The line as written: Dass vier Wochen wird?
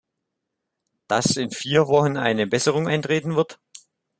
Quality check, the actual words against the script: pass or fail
fail